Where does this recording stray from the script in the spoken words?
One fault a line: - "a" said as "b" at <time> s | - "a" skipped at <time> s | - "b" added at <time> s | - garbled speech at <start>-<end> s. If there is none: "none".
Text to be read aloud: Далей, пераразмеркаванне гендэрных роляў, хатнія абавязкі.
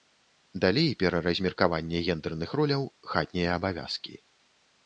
none